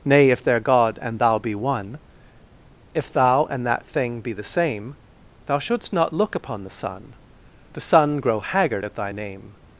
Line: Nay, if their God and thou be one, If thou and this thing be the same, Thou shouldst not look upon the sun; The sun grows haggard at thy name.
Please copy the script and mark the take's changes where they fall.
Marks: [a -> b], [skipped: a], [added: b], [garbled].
Nay, if their God and thou be one, If thou and [this -> that] thing be the same, Thou shouldst not look upon the sun; The sun [grows -> grow] haggard at thy name.